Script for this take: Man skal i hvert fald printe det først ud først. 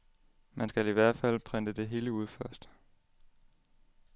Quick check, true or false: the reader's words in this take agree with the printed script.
false